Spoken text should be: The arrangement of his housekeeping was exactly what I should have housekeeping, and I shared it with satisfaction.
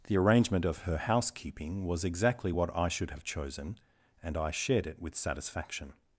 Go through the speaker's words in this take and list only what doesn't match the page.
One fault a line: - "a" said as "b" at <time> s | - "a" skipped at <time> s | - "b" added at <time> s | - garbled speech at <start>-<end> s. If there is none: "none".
- "his" said as "her" at 0.8 s
- "housekeeping" said as "chosen" at 3.2 s